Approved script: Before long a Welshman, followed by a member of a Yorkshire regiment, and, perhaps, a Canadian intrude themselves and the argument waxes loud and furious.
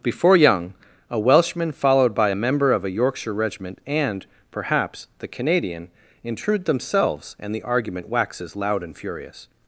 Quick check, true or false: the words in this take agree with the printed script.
false